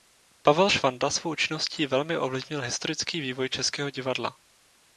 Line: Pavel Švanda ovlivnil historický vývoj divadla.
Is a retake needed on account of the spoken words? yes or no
yes